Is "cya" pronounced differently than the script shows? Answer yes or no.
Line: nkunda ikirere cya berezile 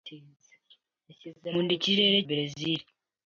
yes